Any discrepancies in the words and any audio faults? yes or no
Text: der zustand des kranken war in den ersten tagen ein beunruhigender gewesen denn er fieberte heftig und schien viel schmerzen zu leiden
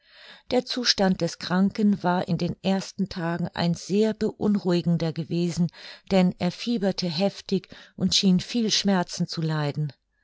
yes